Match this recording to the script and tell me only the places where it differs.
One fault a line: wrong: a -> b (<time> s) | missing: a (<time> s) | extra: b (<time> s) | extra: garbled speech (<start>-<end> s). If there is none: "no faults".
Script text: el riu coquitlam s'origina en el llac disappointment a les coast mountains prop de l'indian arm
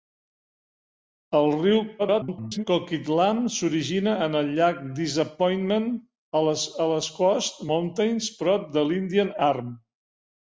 extra: garbled speech (2.0-2.6 s)